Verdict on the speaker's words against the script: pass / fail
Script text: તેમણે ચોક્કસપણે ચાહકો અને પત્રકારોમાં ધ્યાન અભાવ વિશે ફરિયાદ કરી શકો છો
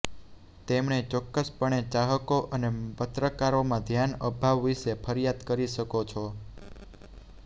pass